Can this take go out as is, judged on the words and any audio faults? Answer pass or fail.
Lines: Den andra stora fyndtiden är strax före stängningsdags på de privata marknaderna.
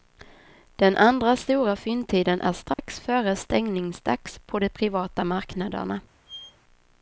fail